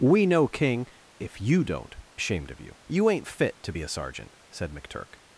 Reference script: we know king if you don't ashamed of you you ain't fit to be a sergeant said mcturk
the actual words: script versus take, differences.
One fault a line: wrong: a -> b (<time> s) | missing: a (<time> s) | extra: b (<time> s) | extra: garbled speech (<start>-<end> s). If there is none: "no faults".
no faults